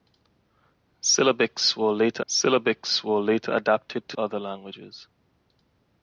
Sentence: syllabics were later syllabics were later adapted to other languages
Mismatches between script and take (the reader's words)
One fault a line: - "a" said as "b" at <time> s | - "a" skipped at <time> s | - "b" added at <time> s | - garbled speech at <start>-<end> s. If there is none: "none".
none